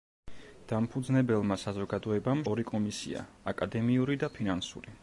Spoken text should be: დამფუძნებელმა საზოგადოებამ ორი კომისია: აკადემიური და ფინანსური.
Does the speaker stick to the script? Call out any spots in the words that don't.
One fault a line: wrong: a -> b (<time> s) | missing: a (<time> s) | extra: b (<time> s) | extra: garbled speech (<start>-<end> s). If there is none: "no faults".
no faults